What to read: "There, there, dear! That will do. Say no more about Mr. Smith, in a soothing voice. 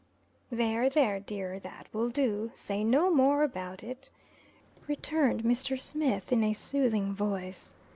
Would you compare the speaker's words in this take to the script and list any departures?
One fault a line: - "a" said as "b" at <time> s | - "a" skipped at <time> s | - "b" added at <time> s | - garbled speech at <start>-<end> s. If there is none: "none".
- "it returned" added at 3.8 s